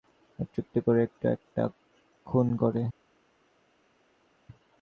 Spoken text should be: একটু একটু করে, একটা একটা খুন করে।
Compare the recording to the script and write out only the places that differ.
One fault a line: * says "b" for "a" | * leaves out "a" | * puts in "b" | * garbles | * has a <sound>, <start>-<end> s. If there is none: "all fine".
all fine